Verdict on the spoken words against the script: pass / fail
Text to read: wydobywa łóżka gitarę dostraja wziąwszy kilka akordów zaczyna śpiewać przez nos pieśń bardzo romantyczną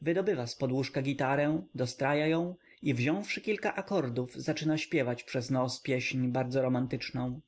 fail